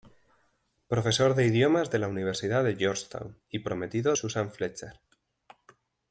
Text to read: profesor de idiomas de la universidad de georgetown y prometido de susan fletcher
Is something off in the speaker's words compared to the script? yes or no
yes